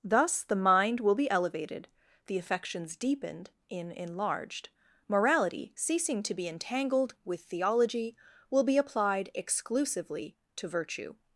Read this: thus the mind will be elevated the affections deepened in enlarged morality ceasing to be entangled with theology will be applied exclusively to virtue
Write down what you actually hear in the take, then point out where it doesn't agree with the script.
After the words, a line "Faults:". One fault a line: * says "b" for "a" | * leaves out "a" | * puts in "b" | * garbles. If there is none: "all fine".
thus the mind will be elevated the affections deepened in enlarged morality ceasing to be entangled with theology will be applied exclusively to virtue
Faults:
all fine